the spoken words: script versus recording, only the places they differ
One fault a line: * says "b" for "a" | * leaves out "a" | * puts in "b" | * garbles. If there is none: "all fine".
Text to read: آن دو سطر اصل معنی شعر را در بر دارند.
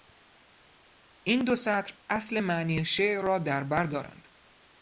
* says "این" for "آن"